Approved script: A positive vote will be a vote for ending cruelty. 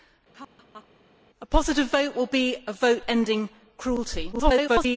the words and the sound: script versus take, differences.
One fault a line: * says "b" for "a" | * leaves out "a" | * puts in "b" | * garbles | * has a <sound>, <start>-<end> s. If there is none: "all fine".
* has a laugh, 0.3-0.9 s
* leaves out "for"
* garbles